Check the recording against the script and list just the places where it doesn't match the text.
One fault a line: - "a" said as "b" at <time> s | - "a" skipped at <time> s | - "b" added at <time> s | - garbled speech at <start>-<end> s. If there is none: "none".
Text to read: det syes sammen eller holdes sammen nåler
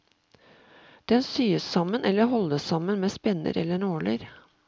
- "det" said as "den" at 1.1 s
- "med spenner eller" added at 3.0 s